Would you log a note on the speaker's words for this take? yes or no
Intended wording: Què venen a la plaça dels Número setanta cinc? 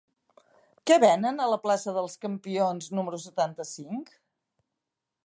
yes